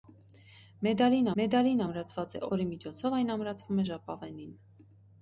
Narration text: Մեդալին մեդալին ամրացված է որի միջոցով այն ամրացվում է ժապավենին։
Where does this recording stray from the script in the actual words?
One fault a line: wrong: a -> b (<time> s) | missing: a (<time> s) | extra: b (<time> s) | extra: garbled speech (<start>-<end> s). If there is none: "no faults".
no faults